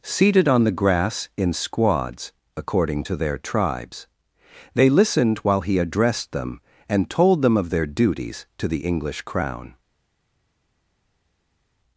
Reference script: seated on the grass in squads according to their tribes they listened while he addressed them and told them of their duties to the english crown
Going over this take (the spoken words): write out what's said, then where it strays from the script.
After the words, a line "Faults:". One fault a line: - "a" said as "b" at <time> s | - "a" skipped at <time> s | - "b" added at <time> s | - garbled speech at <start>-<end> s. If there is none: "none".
seated on the grass in squads according to their tribes they listened while he addressed them and told them of their duties to the english crown
Faults:
none